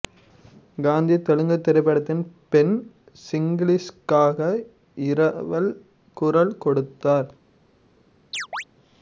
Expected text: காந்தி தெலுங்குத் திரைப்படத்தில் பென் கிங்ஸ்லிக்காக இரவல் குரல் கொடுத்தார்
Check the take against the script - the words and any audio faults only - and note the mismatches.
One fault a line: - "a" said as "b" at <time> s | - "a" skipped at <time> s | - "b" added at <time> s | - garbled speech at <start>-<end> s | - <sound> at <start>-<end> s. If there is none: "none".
- chirp at 8.3-8.6 s